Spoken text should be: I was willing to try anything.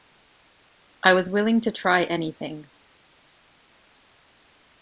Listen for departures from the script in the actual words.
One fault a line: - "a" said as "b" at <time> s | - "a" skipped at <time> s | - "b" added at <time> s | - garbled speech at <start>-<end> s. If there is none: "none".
none